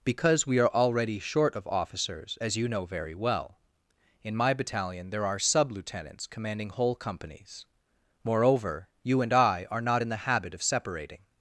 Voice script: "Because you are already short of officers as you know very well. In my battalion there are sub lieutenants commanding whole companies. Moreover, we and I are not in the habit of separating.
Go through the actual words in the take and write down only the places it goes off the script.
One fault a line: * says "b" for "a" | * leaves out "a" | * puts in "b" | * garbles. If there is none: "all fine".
* says "we" for "you"
* says "you" for "we"